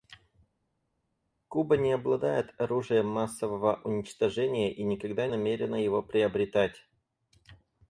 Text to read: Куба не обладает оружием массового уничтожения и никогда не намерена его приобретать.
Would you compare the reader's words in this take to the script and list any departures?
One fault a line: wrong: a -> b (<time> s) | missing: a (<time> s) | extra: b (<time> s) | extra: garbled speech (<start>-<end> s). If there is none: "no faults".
missing: не (5.3 s)